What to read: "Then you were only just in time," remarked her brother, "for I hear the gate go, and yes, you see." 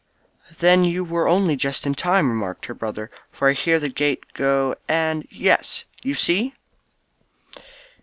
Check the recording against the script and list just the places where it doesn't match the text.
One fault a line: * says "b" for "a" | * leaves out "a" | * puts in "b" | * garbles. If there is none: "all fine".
all fine